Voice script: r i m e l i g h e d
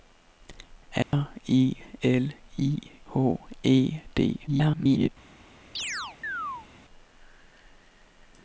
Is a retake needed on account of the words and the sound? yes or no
yes